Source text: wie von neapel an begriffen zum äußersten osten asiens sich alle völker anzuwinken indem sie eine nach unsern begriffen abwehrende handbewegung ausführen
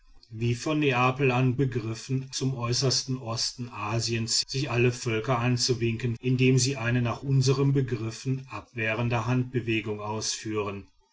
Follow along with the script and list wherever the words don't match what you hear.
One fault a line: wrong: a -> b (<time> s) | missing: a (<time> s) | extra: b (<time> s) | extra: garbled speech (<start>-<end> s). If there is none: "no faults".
no faults